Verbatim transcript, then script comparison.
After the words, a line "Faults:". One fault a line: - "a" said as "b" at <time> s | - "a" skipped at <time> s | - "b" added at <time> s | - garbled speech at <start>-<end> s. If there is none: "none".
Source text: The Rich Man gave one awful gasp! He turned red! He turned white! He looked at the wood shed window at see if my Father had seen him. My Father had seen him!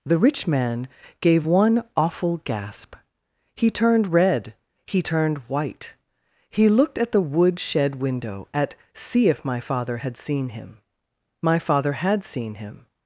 The Rich Man gave one awful gasp! He turned red! He turned white! He looked at the wood shed window at see if my Father had seen him. My Father had seen him!
Faults:
none